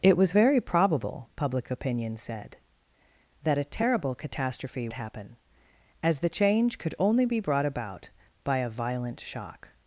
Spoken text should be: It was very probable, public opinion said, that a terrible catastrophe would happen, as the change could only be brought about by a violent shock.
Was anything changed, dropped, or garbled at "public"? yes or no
no